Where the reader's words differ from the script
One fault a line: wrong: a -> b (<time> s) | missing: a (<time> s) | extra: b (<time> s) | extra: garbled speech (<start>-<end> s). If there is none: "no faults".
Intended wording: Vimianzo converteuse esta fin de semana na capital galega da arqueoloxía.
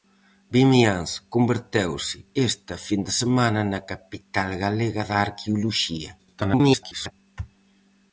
extra: garbled speech (6.2-7.1 s)